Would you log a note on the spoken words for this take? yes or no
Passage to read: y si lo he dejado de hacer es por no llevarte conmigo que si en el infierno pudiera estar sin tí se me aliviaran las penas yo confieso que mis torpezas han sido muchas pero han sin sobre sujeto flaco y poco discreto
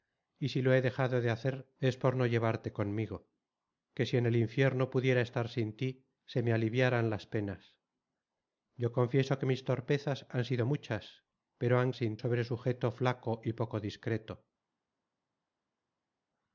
no